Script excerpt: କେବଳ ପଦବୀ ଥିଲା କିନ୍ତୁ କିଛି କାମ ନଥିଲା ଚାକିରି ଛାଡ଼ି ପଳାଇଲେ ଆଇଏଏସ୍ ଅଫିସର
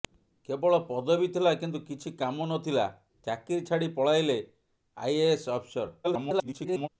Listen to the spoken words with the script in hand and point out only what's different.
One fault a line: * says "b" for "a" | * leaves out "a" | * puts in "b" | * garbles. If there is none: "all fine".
* garbles